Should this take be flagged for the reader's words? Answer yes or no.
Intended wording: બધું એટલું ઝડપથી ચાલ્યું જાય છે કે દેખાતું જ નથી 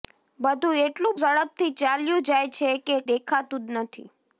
no